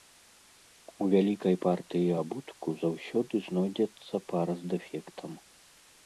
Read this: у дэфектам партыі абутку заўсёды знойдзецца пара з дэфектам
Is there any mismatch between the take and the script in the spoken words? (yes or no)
yes